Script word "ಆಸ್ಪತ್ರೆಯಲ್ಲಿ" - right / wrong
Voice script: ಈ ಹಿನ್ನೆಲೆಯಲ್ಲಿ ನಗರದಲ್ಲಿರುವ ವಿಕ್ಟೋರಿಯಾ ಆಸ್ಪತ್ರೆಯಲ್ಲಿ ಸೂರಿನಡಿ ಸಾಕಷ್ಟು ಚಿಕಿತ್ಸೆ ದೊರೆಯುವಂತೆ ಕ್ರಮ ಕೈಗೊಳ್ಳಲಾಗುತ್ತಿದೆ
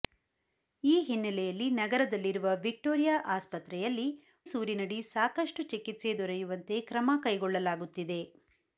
right